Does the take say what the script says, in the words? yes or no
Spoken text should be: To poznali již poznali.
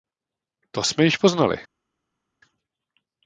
no